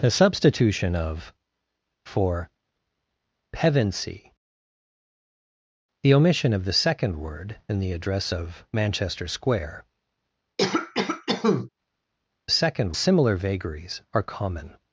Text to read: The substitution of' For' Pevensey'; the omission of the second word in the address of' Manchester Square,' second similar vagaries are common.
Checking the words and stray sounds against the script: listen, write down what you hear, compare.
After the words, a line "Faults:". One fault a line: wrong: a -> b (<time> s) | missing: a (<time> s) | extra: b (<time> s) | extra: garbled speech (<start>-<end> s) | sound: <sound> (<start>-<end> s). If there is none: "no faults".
The substitution of' For' Pevensey'; the omission of the second word in the address of' Manchester Square,' second similar vagaries are common.
Faults:
sound: cough (10.6-11.7 s)